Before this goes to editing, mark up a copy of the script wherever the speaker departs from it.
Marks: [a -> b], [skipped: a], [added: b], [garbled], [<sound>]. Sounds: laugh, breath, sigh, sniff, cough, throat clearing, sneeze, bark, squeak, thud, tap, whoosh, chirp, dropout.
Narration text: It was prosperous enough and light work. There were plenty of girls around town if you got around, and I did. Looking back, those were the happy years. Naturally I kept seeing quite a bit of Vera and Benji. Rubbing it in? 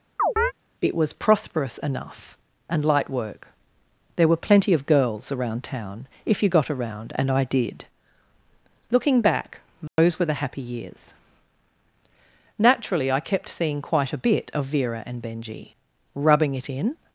[chirp] It was prosperous enough and light work. There were plenty of girls around town if you got around, and I did. Looking back, those [dropout] were the happy years. Naturally I kept seeing quite a bit of Vera and Benji. Rubbing it in?